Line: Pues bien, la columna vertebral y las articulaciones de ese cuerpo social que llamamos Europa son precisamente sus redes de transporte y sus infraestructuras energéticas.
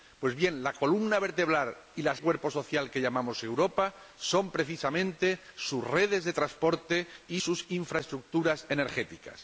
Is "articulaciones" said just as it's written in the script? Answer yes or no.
no